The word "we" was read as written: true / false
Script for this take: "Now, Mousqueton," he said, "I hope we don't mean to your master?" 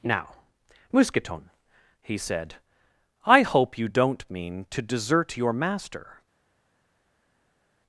false